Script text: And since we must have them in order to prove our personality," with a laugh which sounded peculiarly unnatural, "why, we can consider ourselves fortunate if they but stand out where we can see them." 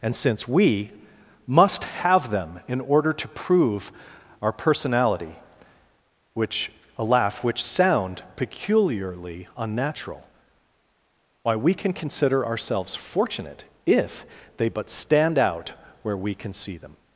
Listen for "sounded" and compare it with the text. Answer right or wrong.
wrong